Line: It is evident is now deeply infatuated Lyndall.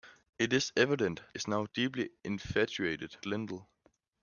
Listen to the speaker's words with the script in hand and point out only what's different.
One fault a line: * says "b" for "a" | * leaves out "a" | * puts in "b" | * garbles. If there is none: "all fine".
all fine